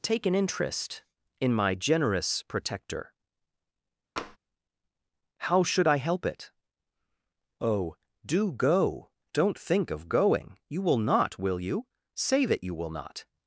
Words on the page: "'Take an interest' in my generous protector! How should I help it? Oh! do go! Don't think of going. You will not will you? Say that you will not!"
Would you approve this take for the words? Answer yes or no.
yes